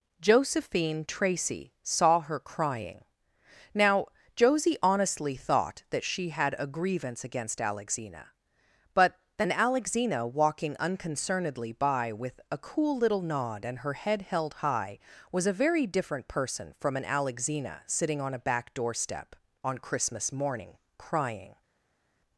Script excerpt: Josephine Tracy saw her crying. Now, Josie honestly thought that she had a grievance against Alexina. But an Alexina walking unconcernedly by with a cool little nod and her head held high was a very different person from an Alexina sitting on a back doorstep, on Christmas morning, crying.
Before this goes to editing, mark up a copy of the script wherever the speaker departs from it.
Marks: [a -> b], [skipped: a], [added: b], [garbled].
Josephine Tracy saw her crying. Now, Josie honestly thought that she had a grievance against Alexina. But [an -> then] Alexina walking unconcernedly by with a cool little nod and her head held high was a very different person from an Alexina sitting on a back doorstep, on Christmas morning, crying.